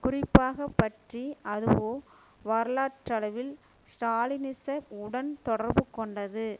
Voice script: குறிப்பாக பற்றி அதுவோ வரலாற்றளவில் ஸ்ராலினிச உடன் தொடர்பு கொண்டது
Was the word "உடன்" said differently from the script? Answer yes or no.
no